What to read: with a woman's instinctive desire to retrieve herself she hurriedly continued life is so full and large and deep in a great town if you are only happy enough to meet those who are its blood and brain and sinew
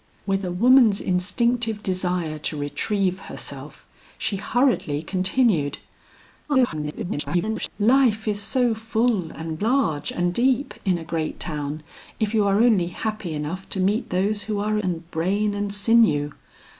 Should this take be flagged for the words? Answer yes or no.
yes